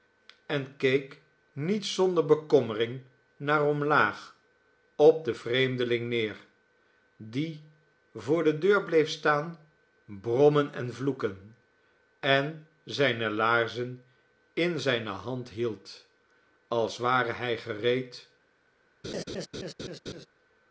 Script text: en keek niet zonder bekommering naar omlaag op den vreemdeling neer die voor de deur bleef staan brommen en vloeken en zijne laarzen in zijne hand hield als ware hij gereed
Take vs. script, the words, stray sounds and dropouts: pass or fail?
fail